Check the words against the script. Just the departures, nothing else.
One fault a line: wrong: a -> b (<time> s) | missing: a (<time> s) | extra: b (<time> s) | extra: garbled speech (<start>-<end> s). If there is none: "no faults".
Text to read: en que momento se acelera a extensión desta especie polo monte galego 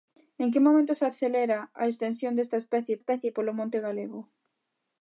extra: especie (3.0 s)